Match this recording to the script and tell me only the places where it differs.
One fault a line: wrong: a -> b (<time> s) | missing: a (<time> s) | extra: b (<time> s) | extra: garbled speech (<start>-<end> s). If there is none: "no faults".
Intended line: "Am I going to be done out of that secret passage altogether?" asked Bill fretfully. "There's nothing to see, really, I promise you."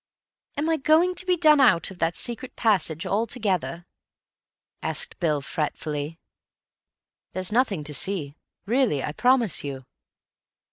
no faults